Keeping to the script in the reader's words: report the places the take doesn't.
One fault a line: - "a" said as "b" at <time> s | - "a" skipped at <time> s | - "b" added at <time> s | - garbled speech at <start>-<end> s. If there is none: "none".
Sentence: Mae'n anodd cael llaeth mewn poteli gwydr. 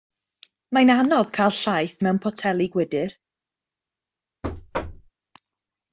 none